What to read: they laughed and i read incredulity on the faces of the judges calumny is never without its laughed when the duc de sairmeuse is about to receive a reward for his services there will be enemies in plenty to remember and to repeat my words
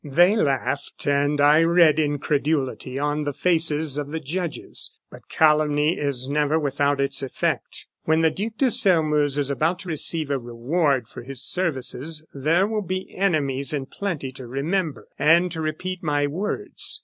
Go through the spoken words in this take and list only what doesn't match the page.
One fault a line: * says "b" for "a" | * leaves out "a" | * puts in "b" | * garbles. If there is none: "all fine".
* puts in "but"
* says "effect" for "laughed"